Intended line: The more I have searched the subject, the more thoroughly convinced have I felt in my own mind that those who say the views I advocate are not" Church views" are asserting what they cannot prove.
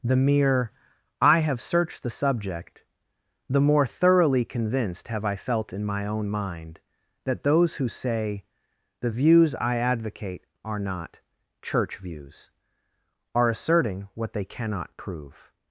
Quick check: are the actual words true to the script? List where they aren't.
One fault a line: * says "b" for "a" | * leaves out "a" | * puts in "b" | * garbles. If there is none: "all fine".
* says "mere" for "more"